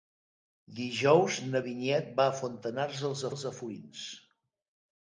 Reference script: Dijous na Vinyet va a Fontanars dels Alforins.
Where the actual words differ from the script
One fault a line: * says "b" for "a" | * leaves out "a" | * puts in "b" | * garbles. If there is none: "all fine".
* puts in "dels"